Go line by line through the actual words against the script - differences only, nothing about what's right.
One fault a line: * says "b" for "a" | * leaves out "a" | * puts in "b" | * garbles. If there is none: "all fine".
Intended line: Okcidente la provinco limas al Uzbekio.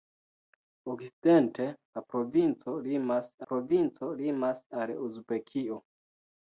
* puts in "provinco limas"